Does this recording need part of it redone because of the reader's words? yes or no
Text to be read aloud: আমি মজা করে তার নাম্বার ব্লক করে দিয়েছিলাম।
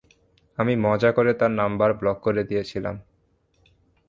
no